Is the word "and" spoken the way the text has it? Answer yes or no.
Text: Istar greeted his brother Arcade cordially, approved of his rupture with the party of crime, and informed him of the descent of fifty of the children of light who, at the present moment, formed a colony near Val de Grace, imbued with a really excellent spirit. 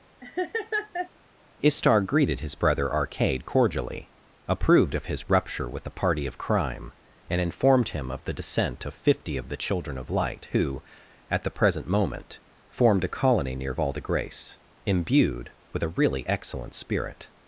yes